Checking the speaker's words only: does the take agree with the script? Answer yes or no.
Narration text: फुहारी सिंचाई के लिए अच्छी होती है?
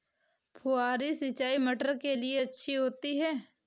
no